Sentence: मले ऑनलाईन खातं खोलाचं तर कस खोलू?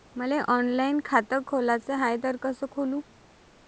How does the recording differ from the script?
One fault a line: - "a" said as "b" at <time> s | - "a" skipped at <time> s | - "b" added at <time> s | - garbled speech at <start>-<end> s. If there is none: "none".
- "हाय" added at 2.0 s